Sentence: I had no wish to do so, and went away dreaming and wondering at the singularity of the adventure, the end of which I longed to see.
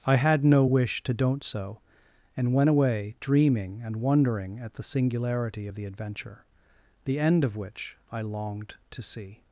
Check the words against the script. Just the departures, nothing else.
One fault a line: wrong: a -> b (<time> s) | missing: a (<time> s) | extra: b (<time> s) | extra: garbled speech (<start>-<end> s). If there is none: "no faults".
wrong: do -> don't (1.1 s)